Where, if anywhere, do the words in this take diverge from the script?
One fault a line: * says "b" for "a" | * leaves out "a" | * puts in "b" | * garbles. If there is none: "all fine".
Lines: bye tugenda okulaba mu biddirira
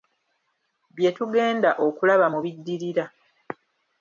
all fine